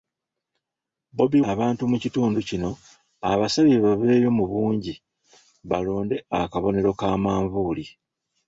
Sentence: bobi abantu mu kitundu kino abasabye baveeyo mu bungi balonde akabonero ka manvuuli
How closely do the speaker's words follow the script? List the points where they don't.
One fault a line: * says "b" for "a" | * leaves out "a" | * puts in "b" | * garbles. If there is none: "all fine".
all fine